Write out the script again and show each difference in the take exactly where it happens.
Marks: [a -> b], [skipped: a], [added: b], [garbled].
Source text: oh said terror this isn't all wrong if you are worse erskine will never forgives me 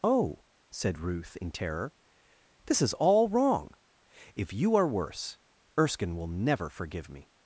oh said [added: ruth in] terror this [isn't -> is] all wrong if you are worse erskine will never [forgives -> forgive] me